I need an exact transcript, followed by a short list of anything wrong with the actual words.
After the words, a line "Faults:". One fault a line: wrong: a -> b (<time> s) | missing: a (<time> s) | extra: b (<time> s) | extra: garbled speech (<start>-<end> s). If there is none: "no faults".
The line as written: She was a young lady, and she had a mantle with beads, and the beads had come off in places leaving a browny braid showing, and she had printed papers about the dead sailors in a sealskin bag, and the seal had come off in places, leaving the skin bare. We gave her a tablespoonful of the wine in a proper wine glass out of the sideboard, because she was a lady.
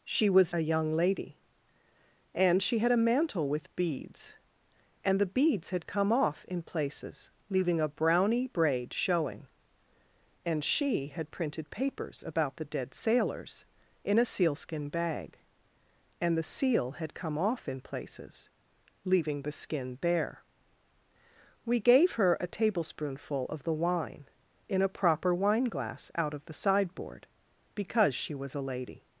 She was a young lady, and she had a mantle with beads, and the beads had come off in places leaving a browny braid showing, and she had printed papers about the dead sailors in a sealskin bag, and the seal had come off in places, leaving the skin bare. We gave her a tablespoonful of the wine in a proper wine glass out of the sideboard, because she was a lady.
Faults:
no faults